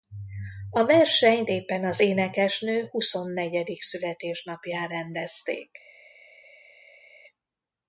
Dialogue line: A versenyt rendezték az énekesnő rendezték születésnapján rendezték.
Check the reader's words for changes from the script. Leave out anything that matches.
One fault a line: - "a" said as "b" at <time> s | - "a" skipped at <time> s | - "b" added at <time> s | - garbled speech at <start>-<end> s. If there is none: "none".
- "rendezték" said as "éppen" at 1.5 s
- "rendezték" said as "huszonnegyedik" at 2.9 s